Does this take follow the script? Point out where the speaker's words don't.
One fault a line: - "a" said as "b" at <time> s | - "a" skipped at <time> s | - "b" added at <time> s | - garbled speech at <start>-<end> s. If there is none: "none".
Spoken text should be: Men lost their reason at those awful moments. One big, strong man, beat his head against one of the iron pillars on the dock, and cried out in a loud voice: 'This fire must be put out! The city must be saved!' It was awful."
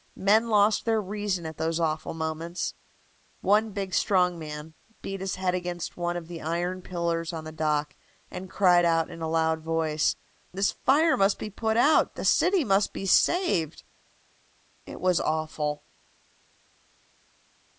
none